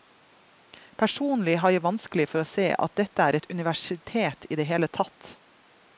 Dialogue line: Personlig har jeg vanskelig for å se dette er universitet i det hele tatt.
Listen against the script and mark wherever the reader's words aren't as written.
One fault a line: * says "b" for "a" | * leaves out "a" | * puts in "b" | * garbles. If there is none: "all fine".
* puts in "at"
* puts in "et"